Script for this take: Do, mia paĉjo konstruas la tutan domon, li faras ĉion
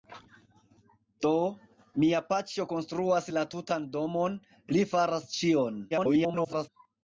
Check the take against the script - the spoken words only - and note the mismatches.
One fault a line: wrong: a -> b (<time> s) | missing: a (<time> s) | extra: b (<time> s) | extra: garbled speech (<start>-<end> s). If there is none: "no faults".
extra: garbled speech (5.9-6.7 s)